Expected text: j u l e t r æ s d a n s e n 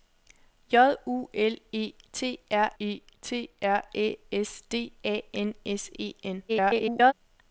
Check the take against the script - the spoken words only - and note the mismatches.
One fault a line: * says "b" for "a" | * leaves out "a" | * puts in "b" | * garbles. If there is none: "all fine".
* puts in "e t r"
* garbles